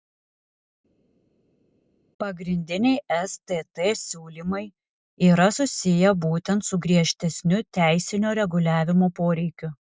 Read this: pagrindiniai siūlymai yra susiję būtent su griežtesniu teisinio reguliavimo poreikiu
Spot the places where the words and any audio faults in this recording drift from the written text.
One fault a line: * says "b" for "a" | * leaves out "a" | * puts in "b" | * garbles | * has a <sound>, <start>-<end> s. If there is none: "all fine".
* puts in "stt"